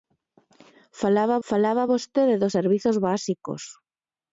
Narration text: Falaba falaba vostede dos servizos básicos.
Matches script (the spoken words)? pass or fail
pass